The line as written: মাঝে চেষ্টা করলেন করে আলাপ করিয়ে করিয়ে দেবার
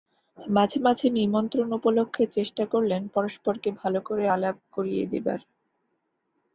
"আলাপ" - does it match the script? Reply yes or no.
yes